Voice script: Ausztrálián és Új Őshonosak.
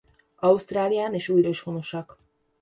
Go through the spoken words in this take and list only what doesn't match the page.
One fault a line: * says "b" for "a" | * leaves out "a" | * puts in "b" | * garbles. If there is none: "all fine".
all fine